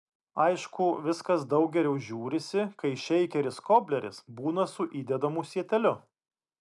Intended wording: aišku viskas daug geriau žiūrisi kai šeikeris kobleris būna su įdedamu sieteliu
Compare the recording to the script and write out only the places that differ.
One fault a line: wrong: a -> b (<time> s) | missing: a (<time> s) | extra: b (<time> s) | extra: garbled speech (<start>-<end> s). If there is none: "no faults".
no faults